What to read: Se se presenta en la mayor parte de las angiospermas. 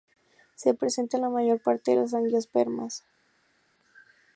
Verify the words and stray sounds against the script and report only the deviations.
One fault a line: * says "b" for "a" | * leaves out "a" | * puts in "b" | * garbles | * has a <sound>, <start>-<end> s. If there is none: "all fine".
* leaves out "se"